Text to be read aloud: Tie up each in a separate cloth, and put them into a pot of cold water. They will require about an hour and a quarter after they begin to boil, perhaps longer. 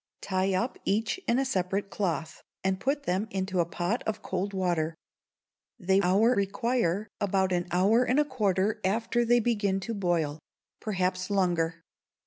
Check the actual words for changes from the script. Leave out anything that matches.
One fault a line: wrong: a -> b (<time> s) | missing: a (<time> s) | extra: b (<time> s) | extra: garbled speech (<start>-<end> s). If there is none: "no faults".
wrong: will -> hour (6.0 s)